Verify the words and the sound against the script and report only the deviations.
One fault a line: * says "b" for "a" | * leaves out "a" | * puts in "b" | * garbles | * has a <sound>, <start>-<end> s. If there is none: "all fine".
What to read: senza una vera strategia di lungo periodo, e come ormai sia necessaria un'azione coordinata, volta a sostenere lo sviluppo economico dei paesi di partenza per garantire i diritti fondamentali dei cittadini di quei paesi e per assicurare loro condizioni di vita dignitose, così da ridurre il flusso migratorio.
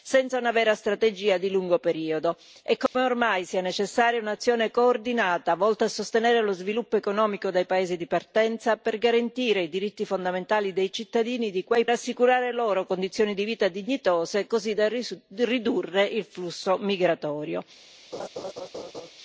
* has a dropout, 2.9-2.9 s
* leaves out "paesi e per"
* has a laugh, 18.1-19.1 s